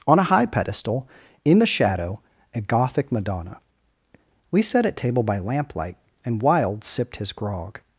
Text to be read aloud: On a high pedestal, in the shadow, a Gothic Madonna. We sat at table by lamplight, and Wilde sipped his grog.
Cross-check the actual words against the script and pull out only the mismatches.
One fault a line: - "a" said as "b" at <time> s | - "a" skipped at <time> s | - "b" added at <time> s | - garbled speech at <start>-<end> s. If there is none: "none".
none